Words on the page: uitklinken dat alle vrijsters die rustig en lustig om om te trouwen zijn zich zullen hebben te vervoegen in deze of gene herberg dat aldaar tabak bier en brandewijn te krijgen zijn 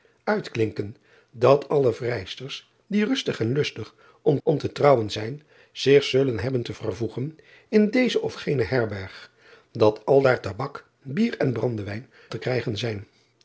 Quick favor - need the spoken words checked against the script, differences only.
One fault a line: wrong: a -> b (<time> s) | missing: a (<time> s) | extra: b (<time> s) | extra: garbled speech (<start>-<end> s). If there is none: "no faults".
no faults